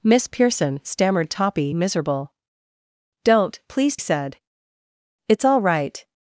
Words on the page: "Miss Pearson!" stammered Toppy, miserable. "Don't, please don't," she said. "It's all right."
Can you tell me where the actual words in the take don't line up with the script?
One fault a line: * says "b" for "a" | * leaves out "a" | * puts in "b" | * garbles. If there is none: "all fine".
* leaves out "don't she"